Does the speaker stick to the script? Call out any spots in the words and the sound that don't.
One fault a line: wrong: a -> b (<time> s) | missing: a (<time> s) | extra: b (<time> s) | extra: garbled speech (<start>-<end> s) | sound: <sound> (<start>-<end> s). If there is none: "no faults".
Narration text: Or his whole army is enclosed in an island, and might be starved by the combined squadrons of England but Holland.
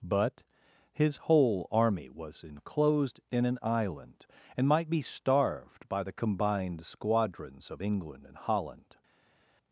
wrong: Or -> But (0.0 s)
wrong: is -> was (2.1 s)
wrong: but -> and (8.2 s)